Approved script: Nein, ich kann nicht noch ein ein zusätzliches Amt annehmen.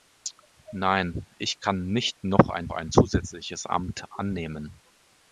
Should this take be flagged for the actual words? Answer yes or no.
no